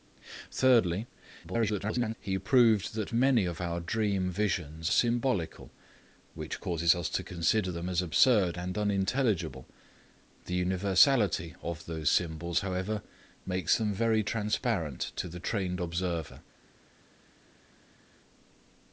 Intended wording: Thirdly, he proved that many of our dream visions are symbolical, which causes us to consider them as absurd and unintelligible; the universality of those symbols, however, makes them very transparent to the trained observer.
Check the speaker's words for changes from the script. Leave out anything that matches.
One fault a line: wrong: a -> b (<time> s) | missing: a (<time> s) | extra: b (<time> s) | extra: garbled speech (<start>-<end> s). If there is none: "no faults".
extra: garbled speech (1.4-2.1 s)
missing: are (4.9 s)